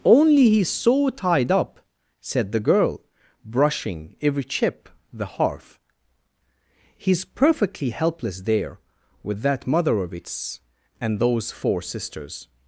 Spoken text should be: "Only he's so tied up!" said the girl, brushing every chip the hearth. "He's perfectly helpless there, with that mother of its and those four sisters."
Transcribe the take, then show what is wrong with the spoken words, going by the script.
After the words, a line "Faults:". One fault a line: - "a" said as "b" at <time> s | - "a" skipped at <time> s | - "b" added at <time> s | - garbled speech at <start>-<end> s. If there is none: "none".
"Only he's so tied up!" said the girl, brushing every chip the hearth. "He's perfectly helpless there, with that mother of its and those four sisters."
Faults:
none